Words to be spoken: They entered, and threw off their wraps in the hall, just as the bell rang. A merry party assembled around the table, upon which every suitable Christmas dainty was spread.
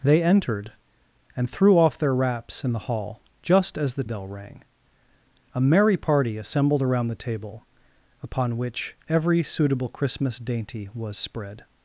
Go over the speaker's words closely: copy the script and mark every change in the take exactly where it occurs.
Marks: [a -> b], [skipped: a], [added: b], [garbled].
They entered, and threw off their wraps in the hall, just as the bell rang. A merry party assembled around the table, upon which every suitable Christmas dainty was spread.